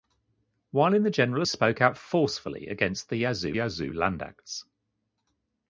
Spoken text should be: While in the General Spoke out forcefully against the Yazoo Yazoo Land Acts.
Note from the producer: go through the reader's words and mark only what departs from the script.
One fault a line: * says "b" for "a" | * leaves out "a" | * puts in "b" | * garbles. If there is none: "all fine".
all fine